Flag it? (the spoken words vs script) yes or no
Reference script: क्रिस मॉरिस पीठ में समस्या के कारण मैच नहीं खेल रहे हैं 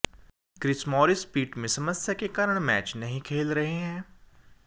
no